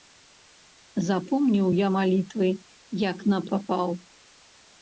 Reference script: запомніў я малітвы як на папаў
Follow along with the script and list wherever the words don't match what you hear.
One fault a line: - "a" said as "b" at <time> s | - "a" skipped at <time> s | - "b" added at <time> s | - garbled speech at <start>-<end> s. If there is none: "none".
none